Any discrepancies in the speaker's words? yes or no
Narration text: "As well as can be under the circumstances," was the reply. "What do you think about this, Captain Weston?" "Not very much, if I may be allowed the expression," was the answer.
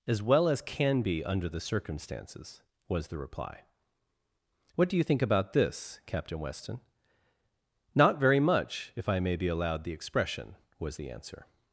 no